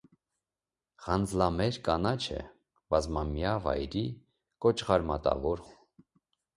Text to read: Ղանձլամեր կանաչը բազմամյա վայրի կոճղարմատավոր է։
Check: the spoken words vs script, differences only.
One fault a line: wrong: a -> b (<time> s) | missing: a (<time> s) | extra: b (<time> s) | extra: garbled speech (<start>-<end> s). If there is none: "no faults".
no faults